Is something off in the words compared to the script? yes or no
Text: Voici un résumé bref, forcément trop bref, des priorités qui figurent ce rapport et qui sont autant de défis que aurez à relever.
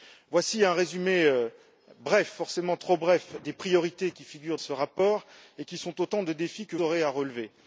no